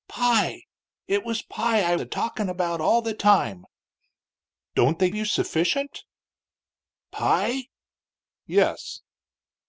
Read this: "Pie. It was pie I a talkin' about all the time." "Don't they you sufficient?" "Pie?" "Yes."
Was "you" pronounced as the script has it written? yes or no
yes